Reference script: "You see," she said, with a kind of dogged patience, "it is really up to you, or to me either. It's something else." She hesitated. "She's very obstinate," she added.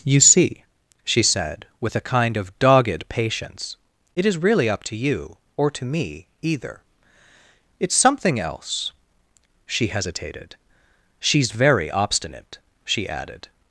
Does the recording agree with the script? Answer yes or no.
yes